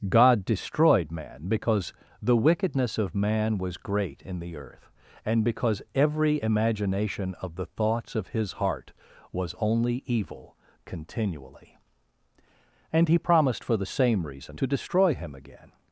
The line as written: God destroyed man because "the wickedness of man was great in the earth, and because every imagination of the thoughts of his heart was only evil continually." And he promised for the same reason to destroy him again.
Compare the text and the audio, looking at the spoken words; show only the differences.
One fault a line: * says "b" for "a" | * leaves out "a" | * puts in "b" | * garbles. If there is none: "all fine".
all fine